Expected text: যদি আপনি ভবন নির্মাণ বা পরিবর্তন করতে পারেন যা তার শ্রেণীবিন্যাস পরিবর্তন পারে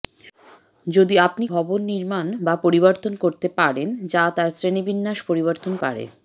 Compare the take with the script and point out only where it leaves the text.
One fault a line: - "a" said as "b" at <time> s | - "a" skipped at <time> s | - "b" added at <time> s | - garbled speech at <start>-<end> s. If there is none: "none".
none